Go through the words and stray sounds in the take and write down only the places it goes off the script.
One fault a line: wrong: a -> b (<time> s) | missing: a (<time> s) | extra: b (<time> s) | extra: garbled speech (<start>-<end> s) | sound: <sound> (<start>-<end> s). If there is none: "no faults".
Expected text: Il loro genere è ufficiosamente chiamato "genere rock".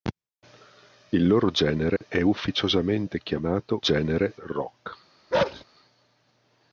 sound: dropout (2.0-2.0 s)
sound: bark (5.3-5.6 s)